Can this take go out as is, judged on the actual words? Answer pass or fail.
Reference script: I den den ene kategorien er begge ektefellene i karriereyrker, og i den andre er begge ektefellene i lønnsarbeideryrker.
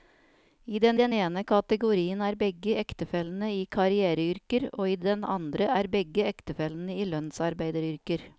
pass